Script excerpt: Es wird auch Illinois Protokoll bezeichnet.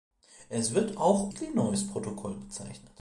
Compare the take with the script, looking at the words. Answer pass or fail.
pass